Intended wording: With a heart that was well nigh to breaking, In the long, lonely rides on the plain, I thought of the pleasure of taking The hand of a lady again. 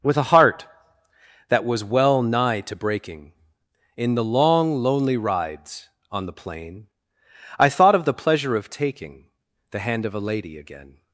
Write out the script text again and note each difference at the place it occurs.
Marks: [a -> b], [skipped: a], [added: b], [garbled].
With a heart that was well nigh to breaking, In the long, lonely rides on the plain, I thought of the pleasure of taking The hand of a lady again.